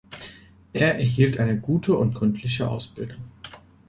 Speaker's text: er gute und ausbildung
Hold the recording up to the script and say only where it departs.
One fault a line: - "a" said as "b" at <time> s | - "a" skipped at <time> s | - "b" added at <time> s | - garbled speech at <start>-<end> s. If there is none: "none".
- "erhielt eine" added at 0.9 s
- "gründliche" added at 2.1 s